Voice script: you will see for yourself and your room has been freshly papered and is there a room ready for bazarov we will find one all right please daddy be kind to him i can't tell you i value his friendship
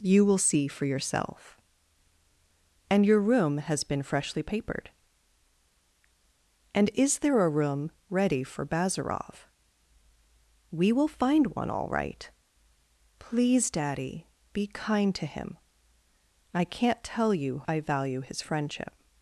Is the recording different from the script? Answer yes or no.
no